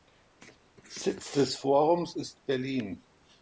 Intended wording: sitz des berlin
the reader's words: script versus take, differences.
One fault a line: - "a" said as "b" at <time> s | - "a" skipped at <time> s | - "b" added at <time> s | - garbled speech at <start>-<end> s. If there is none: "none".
- "forums ist" added at 1.6 s